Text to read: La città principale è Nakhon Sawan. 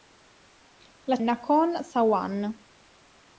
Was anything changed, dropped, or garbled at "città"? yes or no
yes